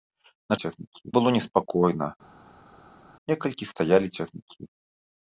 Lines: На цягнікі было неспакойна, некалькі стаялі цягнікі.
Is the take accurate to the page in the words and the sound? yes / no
yes